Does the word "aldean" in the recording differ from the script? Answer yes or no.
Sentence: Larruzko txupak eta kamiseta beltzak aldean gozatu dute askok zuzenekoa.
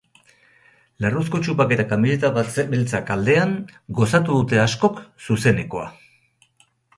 no